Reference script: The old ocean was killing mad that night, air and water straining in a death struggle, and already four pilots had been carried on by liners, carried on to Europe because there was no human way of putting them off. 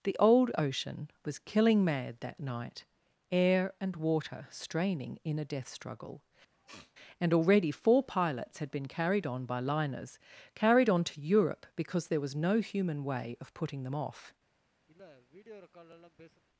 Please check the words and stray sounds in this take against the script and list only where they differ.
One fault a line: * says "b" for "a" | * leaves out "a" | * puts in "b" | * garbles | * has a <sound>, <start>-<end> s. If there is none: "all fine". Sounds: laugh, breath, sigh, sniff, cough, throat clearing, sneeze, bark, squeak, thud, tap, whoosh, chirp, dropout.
* has a sniff, 6.5-6.9 s
* has a sniff, 14.9-16.4 s